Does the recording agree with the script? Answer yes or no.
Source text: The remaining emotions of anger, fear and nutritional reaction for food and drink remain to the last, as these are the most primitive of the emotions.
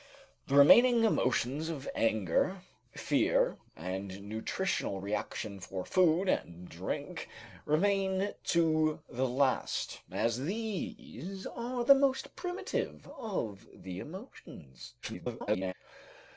no